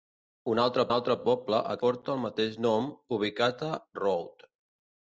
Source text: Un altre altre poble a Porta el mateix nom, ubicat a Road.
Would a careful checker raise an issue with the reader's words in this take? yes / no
no